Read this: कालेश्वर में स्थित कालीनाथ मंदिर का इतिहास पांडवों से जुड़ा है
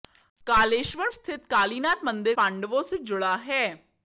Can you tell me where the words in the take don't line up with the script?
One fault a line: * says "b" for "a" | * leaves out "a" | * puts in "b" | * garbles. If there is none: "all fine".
* leaves out "में"
* leaves out "का इतिहास"